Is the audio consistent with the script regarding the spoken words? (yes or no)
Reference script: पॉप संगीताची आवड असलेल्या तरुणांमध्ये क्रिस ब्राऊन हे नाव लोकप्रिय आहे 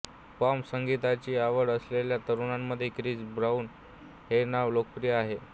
yes